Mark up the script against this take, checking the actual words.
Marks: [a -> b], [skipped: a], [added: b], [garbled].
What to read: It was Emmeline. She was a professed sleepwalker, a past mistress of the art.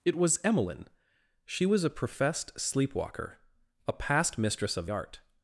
It was Emmeline. She was a professed sleepwalker, a past mistress of [skipped: the] art.